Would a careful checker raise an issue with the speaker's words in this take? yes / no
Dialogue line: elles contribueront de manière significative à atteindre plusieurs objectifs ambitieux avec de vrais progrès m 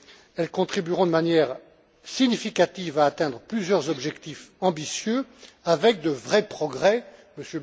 no